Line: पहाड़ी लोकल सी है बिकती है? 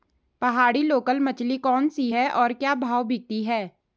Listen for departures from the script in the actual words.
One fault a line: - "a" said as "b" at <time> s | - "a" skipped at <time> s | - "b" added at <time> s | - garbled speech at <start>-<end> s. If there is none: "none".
- "मछली कौन" added at 1.2 s
- "और क्या भाव" added at 2.3 s